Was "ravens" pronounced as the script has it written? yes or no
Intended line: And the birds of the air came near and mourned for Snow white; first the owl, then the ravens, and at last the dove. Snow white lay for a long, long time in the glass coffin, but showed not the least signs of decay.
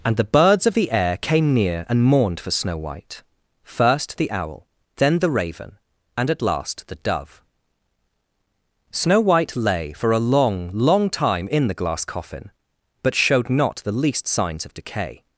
no